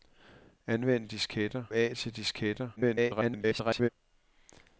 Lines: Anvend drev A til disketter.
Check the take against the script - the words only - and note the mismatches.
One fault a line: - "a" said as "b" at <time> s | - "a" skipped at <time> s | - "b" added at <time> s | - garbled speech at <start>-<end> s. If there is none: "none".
- "drev" said as "disketter" at 1.1 s
- garbled speech at 2.8-3.9 s